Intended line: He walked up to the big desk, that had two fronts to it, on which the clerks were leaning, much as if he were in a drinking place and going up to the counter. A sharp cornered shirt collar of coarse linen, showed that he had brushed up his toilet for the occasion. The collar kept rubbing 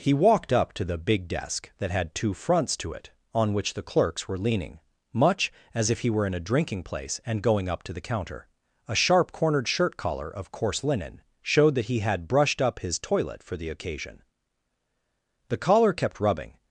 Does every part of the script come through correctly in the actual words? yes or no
yes